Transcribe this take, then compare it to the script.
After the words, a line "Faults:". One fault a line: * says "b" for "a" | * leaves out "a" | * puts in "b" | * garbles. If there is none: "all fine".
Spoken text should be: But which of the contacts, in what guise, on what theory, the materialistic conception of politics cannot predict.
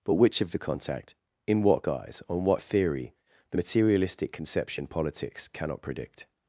But which of the contact, in what guise, on what theory, the materialistic conception politics cannot predict.
Faults:
* says "contact" for "contacts"
* leaves out "of"